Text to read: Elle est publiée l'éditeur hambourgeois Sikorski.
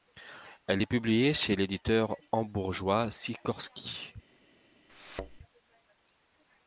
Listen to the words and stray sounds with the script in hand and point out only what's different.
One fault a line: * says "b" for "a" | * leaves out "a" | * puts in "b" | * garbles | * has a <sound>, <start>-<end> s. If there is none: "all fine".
* puts in "chez"
* has a thud, 4.9-5.4 s